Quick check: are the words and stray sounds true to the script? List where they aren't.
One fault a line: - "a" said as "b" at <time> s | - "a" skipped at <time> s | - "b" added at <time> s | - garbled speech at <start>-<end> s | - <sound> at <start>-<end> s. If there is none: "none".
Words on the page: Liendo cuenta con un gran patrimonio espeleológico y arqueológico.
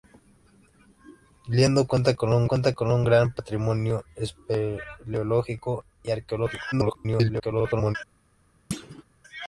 - "cuenta con un" added at 2.4 s
- garbled speech at 6.7-8.0 s
- thud at 8.7-9.0 s